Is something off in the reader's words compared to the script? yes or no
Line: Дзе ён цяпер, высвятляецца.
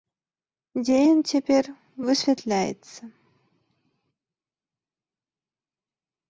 no